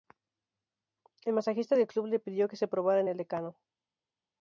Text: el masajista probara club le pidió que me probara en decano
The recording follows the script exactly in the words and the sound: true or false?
false